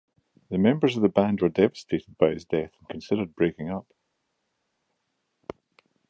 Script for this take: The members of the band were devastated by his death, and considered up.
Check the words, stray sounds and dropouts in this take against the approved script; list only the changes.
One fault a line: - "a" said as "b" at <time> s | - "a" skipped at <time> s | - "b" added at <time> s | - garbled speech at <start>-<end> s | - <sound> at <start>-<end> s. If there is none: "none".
- "breaking" added at 3.4 s